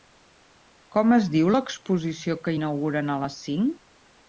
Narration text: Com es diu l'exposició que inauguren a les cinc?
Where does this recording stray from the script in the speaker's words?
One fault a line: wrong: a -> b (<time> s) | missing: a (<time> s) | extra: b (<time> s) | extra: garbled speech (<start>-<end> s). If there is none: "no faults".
no faults